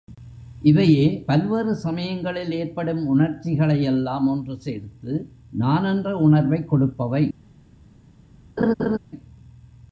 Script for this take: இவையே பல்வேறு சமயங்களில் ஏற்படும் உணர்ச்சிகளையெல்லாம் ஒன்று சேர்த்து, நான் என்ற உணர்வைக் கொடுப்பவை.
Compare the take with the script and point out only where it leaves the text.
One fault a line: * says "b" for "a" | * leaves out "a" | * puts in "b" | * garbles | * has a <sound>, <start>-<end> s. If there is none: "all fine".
* has a laugh, 8.6-9.0 s